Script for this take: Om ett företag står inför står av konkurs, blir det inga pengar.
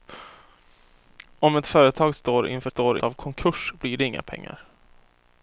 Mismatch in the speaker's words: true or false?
false